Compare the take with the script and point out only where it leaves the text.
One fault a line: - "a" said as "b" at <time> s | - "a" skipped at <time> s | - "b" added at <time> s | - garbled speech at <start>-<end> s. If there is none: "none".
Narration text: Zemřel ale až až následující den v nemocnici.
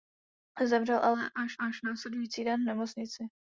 none